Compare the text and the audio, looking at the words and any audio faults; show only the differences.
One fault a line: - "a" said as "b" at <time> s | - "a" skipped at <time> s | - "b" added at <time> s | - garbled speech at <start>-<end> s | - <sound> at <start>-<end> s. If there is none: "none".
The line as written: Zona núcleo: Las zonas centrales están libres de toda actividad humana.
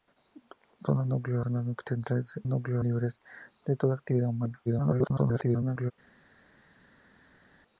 - "Las" skipped at 1.4 s
- "están" said as "núcleo" at 2.5 s
- garbled speech at 4.7-5.9 s